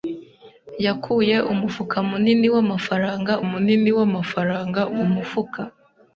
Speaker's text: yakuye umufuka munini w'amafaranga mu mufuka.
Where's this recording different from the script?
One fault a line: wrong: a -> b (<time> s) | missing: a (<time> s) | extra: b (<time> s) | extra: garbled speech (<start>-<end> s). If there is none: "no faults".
extra: munini w'amafaranga (3.5 s)